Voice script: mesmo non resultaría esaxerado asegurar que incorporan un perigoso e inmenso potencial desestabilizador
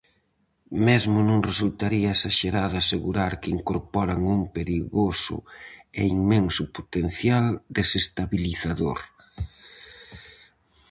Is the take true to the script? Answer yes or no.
yes